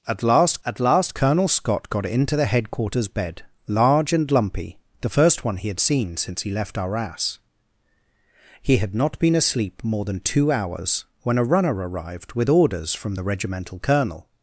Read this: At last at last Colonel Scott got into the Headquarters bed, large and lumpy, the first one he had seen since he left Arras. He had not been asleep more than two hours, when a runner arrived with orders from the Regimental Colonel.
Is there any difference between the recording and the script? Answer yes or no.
no